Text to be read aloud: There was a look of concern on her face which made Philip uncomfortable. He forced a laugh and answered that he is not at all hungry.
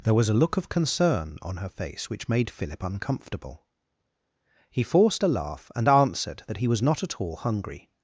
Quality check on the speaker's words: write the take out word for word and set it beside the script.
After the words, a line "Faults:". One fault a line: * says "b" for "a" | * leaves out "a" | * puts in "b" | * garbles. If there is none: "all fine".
There was a look of concern on her face which made Philip uncomfortable. He forced a laugh and answered that he was not at all hungry.
Faults:
* says "was" for "is"